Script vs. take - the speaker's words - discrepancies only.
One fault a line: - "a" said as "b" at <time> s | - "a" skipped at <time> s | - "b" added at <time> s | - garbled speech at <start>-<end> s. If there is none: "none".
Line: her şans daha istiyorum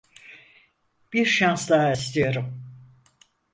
- "her" said as "bir" at 1.1 s